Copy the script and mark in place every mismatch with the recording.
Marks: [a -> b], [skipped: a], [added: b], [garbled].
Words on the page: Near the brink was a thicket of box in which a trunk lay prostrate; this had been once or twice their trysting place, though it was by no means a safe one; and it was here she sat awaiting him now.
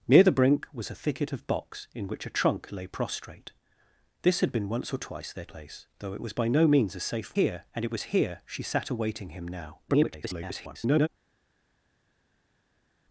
Near the brink was a thicket of box in which a trunk lay prostrate; this had been once or twice their [skipped: trysting] place, though it was by no means a safe [one; -> here] and it was here she sat awaiting him now. [garbled]